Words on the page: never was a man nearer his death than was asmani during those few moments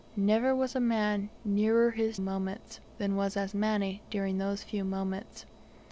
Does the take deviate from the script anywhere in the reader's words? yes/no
yes